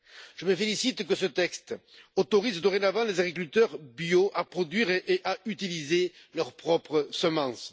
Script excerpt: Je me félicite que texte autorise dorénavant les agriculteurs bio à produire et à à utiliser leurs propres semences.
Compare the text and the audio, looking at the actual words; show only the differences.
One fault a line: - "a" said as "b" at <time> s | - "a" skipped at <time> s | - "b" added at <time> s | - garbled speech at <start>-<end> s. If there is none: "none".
- "ce" added at 1.1 s
- "à" skipped at 5.4 s